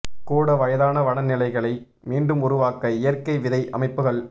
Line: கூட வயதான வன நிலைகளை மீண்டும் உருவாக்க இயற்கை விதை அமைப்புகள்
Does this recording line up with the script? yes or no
yes